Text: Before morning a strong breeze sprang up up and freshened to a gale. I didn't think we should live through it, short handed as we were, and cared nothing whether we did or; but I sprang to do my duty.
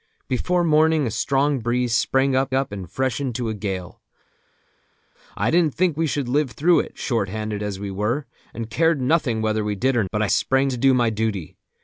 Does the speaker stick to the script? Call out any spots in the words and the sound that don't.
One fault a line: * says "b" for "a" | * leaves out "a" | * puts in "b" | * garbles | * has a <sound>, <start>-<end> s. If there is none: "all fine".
all fine